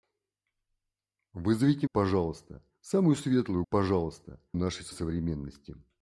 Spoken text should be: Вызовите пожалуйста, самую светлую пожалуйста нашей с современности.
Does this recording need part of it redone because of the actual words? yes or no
no